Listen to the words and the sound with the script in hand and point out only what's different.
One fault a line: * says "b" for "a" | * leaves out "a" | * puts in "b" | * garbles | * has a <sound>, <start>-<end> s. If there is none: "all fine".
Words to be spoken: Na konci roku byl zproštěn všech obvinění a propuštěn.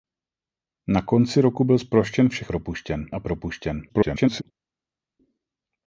* says "propuštěn" for "obvinění"
* garbles